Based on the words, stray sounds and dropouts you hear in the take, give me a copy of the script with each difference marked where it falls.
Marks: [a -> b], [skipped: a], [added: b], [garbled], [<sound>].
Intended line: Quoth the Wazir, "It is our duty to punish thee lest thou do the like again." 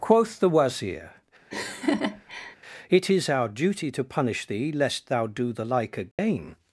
Quoth the Wazir, [laugh] "It is our duty to punish thee lest thou do the like again." [dropout]